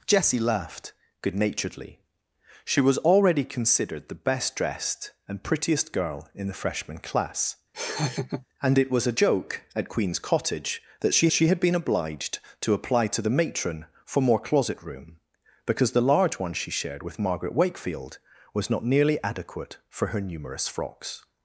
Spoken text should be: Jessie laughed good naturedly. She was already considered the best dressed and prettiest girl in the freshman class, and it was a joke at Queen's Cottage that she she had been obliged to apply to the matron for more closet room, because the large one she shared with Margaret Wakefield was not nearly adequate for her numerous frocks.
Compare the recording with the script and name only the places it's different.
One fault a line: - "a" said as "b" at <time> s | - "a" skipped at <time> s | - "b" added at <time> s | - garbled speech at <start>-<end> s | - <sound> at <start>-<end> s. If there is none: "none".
- laugh at 7.7-8.5 s